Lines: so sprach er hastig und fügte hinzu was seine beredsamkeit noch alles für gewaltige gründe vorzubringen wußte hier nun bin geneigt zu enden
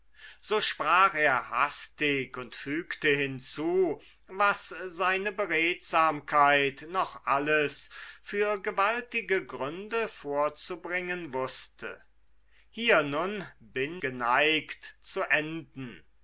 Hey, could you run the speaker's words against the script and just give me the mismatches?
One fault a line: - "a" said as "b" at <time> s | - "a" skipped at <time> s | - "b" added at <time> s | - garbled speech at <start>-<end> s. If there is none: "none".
none